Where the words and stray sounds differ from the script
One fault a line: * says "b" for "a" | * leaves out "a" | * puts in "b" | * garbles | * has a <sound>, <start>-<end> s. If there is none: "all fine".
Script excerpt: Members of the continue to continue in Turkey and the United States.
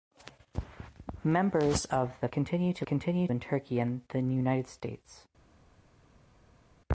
all fine